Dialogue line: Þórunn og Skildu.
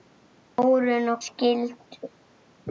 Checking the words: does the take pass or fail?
pass